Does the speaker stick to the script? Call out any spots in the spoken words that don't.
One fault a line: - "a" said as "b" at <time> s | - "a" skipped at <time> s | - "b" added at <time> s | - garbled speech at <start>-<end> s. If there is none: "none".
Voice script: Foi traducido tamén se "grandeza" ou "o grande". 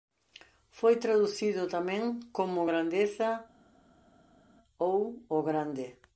- "se" said as "como" at 2.3 s